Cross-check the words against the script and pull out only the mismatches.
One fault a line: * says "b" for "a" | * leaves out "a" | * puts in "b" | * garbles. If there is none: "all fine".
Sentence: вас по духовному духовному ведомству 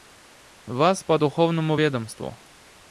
* leaves out "духовному"